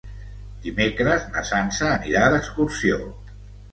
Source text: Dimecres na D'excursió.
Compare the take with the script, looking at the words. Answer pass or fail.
fail